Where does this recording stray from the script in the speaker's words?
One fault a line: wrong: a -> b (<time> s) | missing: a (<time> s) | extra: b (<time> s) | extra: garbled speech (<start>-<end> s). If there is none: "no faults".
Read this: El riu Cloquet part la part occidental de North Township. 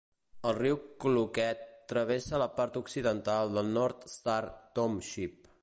wrong: part -> travessa (1.9 s)
extra: Star (4.2 s)